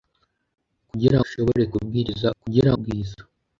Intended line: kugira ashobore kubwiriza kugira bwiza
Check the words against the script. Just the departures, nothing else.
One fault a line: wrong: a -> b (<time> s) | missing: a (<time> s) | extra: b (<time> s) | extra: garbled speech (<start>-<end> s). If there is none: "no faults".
no faults